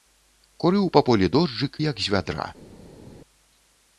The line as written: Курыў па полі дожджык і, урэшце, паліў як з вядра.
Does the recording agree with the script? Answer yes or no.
no